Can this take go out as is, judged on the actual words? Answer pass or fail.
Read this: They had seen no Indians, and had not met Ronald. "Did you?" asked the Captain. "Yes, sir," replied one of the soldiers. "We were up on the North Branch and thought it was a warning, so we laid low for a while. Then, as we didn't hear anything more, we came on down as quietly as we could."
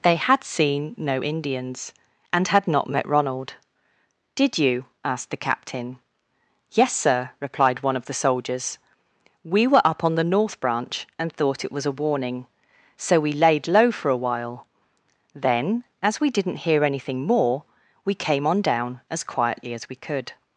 pass